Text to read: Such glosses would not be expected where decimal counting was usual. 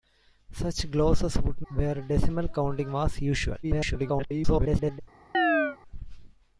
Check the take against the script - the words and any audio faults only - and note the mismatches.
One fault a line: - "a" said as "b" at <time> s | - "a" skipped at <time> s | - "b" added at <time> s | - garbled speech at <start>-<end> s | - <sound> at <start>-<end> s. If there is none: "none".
- "not be expected" skipped at 1.6 s
- garbled speech at 3.6-5.0 s
- chirp at 5.3-5.8 s